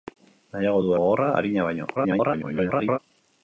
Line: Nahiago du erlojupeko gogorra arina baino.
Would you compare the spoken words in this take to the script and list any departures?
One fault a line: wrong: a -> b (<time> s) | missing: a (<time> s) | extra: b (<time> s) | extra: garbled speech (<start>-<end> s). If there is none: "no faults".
missing: erlojupeko (0.9 s)
extra: garbled speech (2.0-3.0 s)